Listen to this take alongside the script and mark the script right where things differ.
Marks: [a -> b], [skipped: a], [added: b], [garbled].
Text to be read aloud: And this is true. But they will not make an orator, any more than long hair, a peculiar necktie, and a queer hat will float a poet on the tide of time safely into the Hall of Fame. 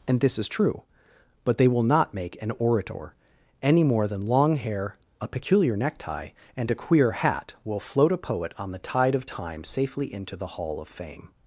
And this is true. But they will not make an orator, any more than long hair, a peculiar necktie, and a queer hat will float a poet on the tide of time safely into the Hall of Fame.